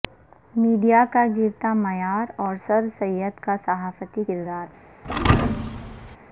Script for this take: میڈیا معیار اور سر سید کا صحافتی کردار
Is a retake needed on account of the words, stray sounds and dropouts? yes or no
yes